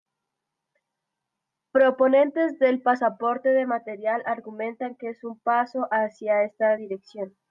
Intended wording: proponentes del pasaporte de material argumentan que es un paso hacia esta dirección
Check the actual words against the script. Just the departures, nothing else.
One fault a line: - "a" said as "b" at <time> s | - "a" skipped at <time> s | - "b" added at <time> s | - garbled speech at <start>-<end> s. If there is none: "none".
none